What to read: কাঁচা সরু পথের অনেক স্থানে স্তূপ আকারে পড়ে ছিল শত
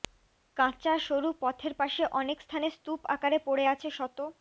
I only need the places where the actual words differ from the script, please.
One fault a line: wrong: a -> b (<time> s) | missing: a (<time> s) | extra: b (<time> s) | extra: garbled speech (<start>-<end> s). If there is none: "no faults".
extra: পাশে (1.8 s)
wrong: ছিল -> আছে (3.7 s)